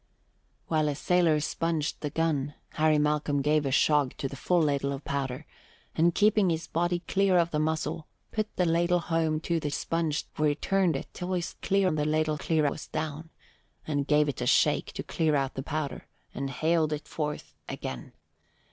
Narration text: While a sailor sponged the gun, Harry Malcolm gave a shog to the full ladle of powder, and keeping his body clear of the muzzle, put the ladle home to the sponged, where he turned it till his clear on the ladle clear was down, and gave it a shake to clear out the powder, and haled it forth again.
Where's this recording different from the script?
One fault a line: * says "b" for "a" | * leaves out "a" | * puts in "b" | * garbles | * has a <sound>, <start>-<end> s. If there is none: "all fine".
all fine